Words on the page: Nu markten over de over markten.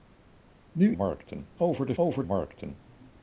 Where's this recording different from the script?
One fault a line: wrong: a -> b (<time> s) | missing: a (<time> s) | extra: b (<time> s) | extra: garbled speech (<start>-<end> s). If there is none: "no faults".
no faults